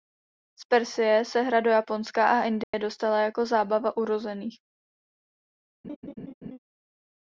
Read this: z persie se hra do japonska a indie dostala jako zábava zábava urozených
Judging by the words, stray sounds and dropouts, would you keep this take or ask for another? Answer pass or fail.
fail